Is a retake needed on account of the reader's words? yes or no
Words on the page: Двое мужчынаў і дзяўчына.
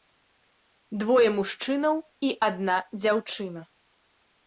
yes